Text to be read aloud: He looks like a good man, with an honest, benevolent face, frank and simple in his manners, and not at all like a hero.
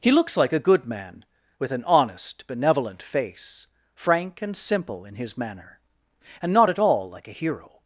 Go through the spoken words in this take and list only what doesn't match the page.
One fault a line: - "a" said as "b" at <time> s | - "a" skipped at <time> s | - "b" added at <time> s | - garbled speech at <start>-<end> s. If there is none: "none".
- "manners" said as "manner" at 5.4 s